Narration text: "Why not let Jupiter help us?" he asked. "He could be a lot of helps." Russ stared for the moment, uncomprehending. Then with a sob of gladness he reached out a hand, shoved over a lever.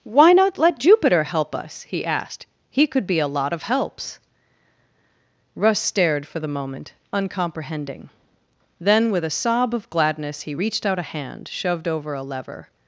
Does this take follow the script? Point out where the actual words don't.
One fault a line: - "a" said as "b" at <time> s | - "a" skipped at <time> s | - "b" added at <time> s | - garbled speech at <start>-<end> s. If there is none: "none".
none